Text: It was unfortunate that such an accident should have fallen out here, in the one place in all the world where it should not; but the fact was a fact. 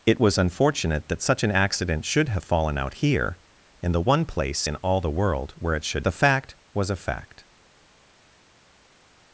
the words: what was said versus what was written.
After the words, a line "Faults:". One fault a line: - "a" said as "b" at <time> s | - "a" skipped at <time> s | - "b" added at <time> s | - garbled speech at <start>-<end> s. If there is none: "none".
It was unfortunate that such an accident should have fallen out here, in the one place in all the world where it should the fact was a fact.
Faults:
- "not but" skipped at 6.1 s